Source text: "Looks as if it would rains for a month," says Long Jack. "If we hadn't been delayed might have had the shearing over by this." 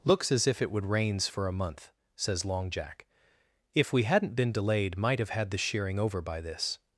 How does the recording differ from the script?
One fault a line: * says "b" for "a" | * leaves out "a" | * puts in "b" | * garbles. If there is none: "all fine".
all fine